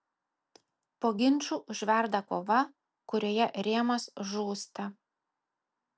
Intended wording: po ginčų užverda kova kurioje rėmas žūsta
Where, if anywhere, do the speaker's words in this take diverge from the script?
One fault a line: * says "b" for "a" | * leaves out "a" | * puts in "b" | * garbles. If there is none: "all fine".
all fine